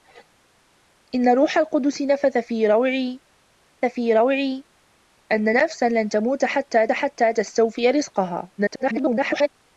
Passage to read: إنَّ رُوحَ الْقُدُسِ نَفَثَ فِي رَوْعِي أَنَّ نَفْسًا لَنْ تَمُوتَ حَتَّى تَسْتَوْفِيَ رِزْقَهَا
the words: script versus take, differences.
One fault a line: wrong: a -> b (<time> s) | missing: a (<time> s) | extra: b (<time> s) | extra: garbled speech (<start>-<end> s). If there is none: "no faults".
extra: فِي رَوْعِي (3.8 s)
extra: حَتَّى (6.9 s)
extra: garbled speech (8.6-9.5 s)